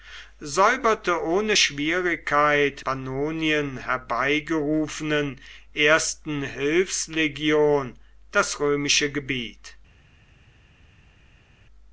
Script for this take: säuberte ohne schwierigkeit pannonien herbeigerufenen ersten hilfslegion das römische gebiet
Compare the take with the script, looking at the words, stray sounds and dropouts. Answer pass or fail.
pass